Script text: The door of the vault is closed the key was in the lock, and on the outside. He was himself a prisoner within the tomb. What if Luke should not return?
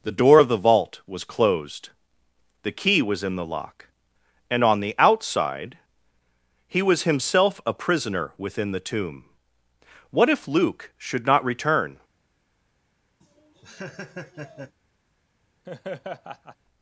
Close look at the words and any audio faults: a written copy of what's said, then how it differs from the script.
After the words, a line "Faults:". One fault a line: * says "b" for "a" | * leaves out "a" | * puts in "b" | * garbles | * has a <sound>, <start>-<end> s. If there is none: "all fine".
The door of the vault was closed the key was in the lock, and on the outside. He was himself a prisoner within the tomb. What if Luke should not return?
Faults:
* says "was" for "is"
* has a laugh, 13.2-14.8 s
* has a laugh, 15.6-16.6 s